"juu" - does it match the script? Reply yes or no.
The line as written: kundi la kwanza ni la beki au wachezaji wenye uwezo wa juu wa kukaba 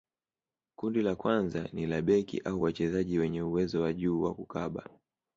yes